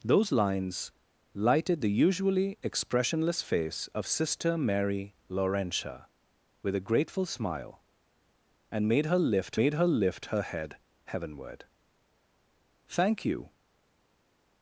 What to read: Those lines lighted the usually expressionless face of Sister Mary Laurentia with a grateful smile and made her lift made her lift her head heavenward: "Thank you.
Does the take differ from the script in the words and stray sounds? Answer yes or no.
no